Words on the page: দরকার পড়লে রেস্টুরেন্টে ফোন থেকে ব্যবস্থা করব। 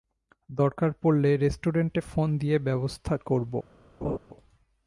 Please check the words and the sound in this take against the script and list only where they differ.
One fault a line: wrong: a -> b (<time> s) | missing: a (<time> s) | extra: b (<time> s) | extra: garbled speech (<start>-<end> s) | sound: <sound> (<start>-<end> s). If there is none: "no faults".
wrong: থেকে -> দিয়ে (2.4 s)
sound: laugh (4.0-4.2 s)